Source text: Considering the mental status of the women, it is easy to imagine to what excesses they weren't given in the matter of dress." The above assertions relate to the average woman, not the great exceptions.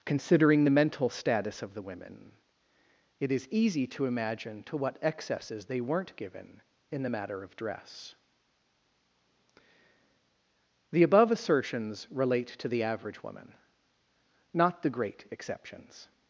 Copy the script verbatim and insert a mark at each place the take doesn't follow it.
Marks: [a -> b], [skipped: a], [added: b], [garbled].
Considering the mental status of the women, it is easy to imagine to what excesses they weren't given in the matter of dress." The above assertions relate to the average woman, not the great exceptions.